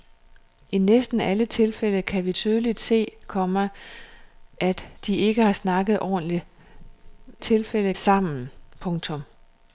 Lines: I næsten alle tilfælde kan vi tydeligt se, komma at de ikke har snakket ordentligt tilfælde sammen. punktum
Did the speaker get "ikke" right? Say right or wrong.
right